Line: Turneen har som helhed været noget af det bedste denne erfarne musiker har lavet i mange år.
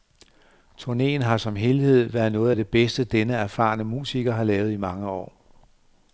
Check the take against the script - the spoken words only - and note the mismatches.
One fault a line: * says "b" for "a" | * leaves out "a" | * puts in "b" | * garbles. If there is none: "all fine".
all fine